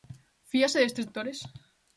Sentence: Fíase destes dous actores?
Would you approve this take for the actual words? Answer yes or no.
no